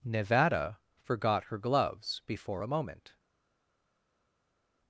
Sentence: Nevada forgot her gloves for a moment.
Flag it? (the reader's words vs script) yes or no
yes